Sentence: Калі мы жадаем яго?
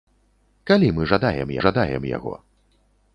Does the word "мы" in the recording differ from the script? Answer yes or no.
no